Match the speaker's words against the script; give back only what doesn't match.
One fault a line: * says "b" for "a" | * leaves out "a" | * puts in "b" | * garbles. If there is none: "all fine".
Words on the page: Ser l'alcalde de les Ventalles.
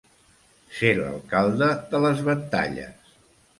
all fine